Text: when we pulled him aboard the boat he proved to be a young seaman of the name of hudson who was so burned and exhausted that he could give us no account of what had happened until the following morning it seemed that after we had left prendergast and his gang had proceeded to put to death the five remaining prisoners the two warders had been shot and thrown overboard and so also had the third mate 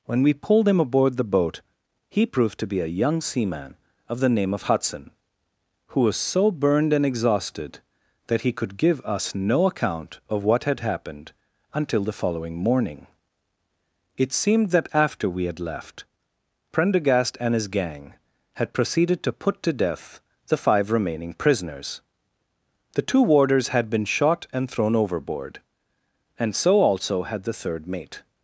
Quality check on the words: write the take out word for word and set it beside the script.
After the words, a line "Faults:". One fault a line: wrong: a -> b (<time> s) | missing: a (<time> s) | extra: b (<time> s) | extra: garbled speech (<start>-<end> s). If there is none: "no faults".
when we pulled him aboard the boat he proved to be a young seaman of the name of hudson who was so burned and exhausted that he could give us no account of what had happened until the following morning it seemed that after we had left prendergast and his gang had proceeded to put to death the five remaining prisoners the two warders had been shot and thrown overboard and so also had the third mate
Faults:
no faults